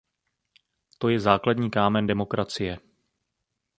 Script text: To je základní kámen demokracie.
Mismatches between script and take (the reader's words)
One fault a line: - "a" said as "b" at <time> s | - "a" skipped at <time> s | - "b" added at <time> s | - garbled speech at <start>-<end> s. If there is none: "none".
none